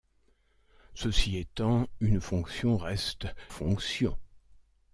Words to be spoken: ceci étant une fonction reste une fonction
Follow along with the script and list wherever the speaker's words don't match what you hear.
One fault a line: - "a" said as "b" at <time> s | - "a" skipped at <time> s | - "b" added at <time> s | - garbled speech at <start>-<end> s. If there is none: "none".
- "une" skipped at 3.3 s